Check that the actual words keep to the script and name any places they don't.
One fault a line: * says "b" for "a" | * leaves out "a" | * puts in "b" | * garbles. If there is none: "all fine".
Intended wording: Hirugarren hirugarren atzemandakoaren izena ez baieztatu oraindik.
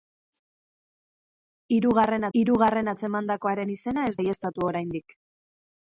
all fine